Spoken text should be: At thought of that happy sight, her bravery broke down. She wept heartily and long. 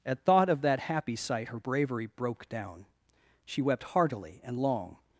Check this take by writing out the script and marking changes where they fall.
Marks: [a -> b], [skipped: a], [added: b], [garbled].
At thought of that happy sight, her bravery broke down. She wept heartily and long.